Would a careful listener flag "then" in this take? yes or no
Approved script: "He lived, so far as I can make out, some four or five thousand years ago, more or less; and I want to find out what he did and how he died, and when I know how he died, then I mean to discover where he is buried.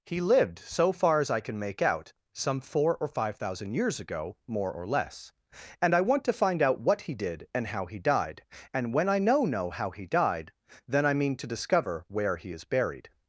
no